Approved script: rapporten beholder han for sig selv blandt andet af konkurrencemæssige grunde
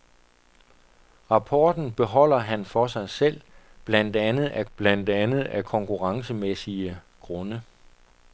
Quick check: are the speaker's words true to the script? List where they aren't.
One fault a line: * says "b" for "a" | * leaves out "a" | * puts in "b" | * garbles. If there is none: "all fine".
* puts in "blandt andet af"